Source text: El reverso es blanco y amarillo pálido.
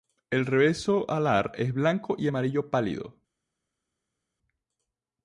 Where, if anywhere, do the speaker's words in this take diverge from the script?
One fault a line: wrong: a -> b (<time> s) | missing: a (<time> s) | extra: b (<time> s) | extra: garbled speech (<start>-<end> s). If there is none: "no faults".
extra: alar (1.1 s)